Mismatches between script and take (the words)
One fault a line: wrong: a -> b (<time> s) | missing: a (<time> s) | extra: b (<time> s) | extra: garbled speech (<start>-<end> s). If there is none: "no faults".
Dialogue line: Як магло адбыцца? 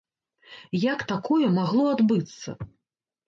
extra: такое (1.1 s)